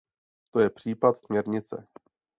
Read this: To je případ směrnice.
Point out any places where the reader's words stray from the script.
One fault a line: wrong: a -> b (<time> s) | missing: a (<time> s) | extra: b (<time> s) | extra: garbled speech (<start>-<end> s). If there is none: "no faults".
no faults